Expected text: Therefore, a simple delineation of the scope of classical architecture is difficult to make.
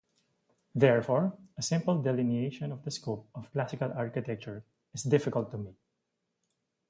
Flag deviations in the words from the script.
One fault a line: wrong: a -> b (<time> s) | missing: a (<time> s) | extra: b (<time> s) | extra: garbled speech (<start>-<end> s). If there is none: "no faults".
no faults